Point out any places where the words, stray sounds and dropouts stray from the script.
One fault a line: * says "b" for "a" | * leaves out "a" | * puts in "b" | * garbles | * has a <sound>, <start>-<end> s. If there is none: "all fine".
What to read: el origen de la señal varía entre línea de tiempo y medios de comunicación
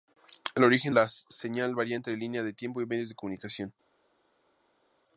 * leaves out "de"